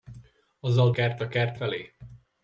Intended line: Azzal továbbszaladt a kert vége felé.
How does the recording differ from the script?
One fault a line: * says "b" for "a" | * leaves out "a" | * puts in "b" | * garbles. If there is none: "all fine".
* says "kert" for "továbbszaladt"
* leaves out "vége"